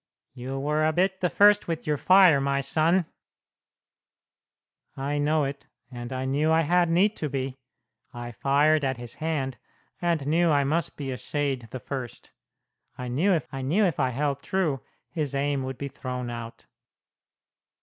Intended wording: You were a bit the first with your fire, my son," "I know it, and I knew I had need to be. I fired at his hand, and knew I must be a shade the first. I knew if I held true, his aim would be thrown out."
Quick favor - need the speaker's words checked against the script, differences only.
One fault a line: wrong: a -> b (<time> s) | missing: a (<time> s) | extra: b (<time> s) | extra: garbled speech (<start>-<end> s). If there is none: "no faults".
extra: knew if I (13.6 s)